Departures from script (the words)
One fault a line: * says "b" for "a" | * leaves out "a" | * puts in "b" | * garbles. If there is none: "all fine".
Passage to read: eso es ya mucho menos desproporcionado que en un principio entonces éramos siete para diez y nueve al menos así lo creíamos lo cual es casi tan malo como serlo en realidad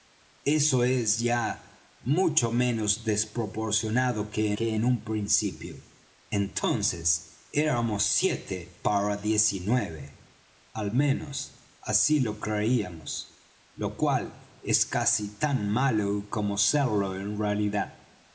* puts in "que"